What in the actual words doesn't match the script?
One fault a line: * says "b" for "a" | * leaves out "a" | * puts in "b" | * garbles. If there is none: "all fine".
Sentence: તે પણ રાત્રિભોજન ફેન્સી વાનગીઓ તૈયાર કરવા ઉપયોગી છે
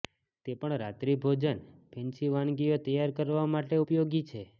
* puts in "માટે"